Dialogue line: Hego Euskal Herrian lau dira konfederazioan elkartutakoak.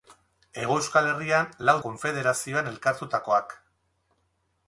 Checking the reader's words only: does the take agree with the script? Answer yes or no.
no